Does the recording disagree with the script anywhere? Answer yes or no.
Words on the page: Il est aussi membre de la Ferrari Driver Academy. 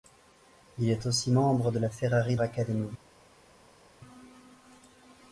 yes